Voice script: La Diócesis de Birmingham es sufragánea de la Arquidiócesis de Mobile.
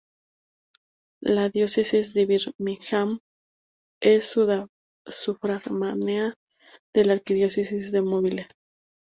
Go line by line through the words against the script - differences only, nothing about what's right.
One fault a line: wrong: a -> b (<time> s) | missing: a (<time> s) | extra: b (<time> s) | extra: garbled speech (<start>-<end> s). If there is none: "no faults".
no faults